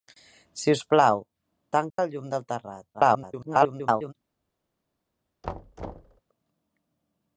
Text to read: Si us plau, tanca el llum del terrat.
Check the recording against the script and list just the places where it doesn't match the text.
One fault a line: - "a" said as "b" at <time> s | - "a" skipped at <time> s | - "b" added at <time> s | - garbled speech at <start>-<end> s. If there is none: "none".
- garbled speech at 2.9-4.1 s